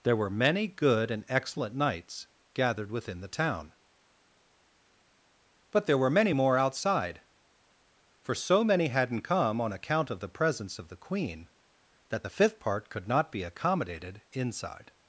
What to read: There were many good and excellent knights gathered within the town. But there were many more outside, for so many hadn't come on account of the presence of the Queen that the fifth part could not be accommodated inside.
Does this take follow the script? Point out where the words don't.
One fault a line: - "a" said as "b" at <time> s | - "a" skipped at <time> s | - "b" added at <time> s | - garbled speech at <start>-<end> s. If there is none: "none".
none